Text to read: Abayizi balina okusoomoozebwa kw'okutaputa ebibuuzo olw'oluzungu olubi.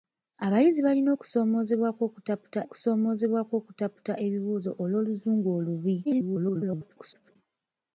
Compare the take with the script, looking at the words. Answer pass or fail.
fail